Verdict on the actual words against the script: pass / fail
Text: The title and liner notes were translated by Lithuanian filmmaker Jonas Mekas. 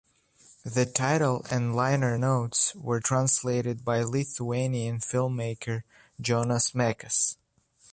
pass